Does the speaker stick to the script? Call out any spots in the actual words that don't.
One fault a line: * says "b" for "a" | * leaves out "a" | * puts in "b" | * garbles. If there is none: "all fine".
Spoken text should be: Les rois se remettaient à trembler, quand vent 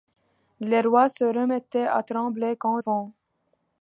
all fine